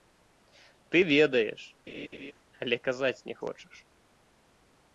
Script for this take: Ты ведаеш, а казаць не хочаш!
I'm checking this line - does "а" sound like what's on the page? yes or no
no